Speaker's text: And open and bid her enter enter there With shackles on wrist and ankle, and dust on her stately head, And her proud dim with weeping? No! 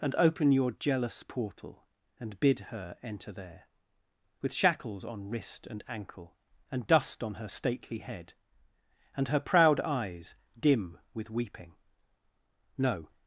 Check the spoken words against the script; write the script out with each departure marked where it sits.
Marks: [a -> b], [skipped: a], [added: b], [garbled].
And open [added: your jealous portal] and bid her enter [skipped: enter] there With shackles on wrist and ankle, and dust on her stately head, And her proud [added: eyes] dim with weeping? No!